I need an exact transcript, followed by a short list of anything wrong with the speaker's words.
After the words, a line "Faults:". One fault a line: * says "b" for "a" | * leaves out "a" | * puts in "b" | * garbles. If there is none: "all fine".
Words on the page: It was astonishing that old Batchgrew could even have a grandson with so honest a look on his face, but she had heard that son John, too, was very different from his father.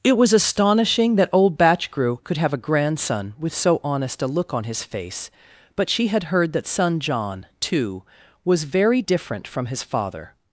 It was astonishing that old Batchgrew could have a grandson with so honest a look on his face, but she had heard that son John, too, was very different from his father.
Faults:
* leaves out "even"